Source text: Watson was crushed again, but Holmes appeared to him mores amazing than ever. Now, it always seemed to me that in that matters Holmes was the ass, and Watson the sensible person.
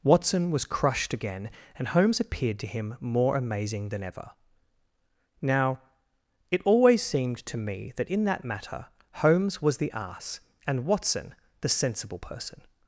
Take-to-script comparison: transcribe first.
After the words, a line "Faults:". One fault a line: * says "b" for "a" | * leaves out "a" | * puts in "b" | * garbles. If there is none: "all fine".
Watson was crushed again, and Holmes appeared to him more amazing than ever. Now, it always seemed to me that in that matter Holmes was the ass, and Watson the sensible person.
Faults:
* says "and" for "but"
* says "more" for "mores"
* says "matter" for "matters"